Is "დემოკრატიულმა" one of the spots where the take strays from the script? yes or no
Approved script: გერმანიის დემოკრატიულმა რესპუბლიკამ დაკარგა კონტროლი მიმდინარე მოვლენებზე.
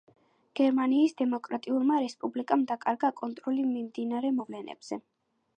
no